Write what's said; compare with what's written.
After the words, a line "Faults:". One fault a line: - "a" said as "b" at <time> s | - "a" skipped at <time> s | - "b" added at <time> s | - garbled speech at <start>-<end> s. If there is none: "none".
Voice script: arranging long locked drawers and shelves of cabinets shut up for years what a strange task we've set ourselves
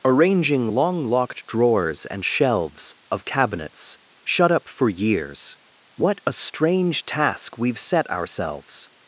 arranging long locked drawers and shelves of cabinets shut up for years what a strange task we've set ourselves
Faults:
none